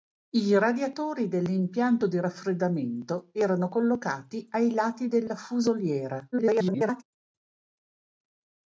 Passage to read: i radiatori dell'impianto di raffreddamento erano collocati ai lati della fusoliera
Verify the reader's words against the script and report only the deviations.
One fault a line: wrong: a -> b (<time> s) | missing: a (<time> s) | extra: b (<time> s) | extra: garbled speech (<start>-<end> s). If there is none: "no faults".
extra: garbled speech (6.3-7.0 s)